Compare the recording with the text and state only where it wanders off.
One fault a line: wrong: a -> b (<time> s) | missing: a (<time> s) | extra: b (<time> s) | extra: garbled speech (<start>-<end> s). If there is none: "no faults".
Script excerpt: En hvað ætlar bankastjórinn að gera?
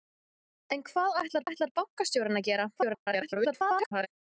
extra: ætlar (1.5 s)
extra: garbled speech (2.8-4.1 s)